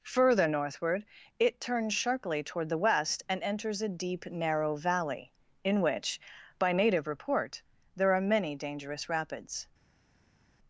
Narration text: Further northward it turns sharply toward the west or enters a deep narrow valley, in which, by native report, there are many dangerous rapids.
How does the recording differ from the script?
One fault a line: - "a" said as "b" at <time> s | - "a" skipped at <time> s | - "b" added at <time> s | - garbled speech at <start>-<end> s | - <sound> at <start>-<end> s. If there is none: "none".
- "or" said as "and" at 3.3 s